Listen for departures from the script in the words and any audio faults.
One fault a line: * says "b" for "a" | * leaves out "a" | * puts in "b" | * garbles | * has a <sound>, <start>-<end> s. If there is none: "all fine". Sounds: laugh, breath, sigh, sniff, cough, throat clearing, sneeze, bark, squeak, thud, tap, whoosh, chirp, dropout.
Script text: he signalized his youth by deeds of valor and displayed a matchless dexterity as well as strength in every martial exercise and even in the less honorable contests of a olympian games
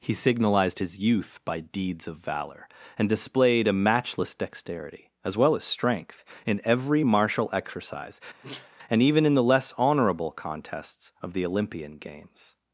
* has a sneeze, 8.4-8.7 s
* says "the" for "a"